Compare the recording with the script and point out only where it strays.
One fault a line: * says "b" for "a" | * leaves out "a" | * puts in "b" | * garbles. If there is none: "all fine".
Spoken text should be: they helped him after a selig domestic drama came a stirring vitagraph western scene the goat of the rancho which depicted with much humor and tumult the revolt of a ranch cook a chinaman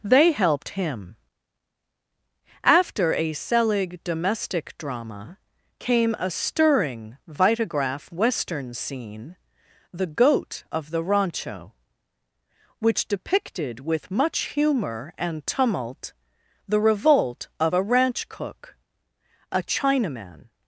all fine